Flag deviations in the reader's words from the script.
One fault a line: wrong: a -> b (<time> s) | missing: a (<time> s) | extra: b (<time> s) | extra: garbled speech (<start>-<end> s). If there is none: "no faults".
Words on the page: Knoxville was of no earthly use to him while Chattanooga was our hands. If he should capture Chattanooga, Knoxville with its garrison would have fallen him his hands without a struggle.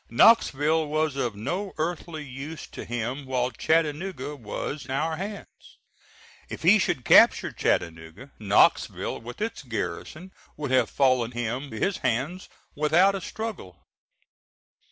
no faults